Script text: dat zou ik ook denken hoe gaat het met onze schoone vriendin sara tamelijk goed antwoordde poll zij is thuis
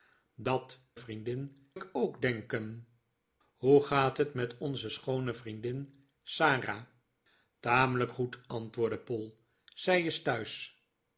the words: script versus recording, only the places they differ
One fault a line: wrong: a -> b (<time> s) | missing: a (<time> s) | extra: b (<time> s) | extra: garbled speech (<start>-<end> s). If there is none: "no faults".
wrong: zou -> vriendin (1.0 s)